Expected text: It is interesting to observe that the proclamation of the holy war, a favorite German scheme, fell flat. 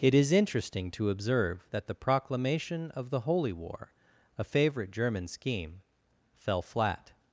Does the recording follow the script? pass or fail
pass